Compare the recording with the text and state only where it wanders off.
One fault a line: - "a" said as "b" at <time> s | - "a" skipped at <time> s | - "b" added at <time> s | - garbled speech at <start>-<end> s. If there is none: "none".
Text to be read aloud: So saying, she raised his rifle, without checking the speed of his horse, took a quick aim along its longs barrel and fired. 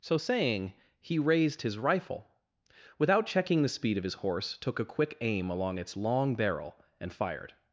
- "she" said as "he" at 1.0 s
- "longs" said as "long" at 6.0 s